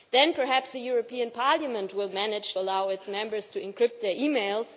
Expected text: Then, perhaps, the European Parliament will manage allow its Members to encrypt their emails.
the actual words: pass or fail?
pass